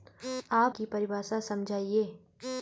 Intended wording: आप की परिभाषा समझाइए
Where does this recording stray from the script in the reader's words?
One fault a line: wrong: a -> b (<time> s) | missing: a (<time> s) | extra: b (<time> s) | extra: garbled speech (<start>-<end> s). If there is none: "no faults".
no faults